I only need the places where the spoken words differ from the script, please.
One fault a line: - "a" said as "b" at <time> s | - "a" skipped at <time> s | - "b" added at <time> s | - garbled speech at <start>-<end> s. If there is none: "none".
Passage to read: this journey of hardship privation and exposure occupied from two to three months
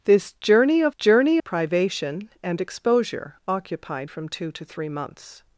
- "hardship" said as "journey" at 0.9 s